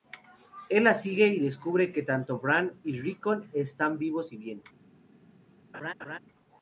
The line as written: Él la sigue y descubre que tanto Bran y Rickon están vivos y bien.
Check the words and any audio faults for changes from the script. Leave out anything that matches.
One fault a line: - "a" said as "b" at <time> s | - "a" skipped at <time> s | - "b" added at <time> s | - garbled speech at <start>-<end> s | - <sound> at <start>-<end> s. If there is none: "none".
- laugh at 5.7-6.2 s